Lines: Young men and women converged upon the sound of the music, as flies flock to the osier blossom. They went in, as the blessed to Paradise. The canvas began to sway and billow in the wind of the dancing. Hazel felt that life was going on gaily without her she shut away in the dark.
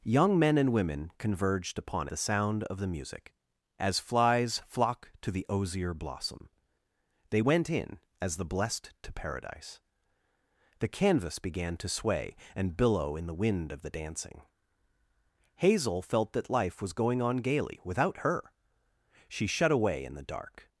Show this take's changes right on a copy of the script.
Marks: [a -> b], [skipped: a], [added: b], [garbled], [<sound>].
Young men and women converged upon the sound of the music, as flies flock to the osier blossom. They went in, as the blessed to Paradise. The canvas began to sway and billow in the wind of the dancing. Hazel felt that life was going on gaily without her she shut away in the dark.